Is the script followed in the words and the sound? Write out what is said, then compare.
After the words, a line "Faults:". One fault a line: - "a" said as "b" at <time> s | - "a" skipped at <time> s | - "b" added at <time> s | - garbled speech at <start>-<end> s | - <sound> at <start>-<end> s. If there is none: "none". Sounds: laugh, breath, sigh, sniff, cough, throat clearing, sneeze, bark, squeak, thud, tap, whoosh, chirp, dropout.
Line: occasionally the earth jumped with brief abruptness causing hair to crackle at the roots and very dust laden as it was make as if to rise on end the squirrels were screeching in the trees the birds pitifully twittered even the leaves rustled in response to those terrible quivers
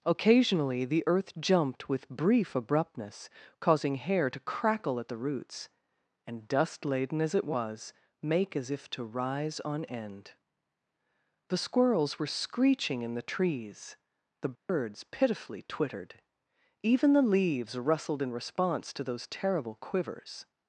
occasionally the earth jumped with brief abruptness causing hair to crackle at the roots and dust laden as it was make as if to rise on end the squirrels were screeching in the trees the birds pitifully twittered even the leaves rustled in response to those terrible quivers
Faults:
- "very" skipped at 6.5 s
- dropout at 14.5-14.7 s